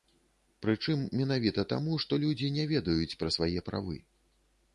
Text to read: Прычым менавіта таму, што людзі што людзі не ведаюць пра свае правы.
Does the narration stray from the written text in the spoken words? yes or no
yes